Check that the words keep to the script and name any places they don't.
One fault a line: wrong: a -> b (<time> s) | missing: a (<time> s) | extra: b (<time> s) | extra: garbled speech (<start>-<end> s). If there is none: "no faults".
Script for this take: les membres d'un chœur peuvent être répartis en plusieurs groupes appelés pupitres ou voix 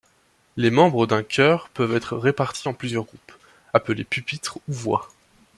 no faults